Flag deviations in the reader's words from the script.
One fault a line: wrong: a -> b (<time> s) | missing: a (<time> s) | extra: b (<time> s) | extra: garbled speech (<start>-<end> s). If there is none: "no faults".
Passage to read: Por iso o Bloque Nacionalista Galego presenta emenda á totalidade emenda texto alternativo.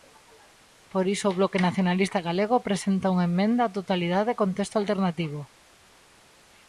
extra: unha (3.1 s)
wrong: emenda -> con (4.4 s)